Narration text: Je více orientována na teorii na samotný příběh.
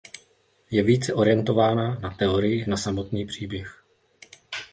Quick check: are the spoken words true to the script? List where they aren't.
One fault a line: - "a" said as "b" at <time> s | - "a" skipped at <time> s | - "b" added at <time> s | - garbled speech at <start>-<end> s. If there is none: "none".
none